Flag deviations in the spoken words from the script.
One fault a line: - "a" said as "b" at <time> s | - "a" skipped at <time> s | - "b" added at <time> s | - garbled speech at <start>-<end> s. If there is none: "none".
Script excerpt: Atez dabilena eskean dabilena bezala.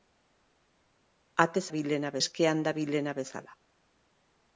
none